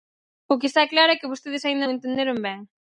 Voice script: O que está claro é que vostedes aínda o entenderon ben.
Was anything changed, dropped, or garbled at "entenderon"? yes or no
no